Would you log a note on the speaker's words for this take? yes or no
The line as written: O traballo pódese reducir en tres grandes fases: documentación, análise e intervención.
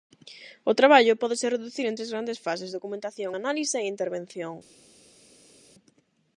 no